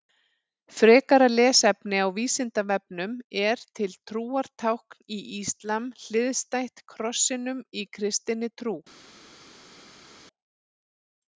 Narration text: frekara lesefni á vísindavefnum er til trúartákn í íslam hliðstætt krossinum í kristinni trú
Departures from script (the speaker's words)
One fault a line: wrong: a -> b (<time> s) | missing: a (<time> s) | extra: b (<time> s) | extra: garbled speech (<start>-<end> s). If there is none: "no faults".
no faults